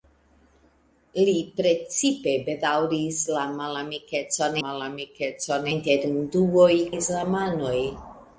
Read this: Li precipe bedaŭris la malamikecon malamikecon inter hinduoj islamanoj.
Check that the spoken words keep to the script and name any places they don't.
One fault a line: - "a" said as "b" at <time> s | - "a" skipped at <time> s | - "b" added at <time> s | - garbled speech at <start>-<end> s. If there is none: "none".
none